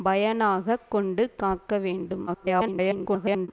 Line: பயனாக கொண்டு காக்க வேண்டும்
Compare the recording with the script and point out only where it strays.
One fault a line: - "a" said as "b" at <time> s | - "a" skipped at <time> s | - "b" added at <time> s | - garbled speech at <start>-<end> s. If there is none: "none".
- garbled speech at 2.3-3.5 s